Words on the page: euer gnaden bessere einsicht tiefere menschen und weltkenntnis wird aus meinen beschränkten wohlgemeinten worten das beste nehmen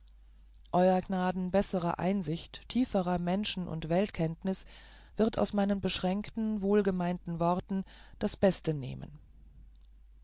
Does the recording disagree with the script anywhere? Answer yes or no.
no